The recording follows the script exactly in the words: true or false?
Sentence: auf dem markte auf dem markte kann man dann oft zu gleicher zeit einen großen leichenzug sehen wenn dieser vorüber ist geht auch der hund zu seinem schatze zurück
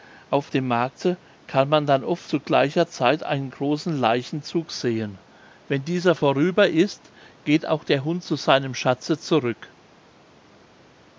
false